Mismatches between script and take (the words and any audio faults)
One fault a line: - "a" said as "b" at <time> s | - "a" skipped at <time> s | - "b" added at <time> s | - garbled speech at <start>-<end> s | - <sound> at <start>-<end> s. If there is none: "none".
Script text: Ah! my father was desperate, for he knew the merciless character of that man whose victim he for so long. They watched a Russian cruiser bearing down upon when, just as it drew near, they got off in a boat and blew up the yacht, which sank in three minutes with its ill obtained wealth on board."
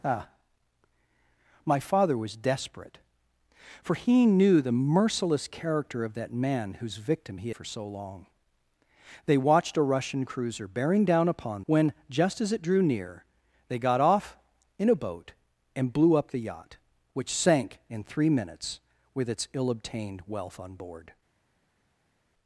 none